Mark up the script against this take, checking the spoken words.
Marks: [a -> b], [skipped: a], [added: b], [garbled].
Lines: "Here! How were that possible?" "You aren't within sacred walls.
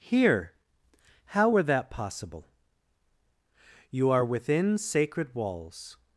"Here! How were that possible?" "You [aren't -> are] within sacred walls.